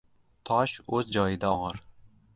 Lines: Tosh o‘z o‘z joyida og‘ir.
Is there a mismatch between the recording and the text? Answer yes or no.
yes